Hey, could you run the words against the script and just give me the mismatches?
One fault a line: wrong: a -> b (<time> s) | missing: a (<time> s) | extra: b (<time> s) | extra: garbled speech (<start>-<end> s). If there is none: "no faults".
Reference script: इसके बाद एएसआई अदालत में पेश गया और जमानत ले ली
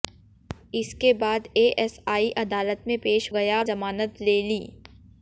no faults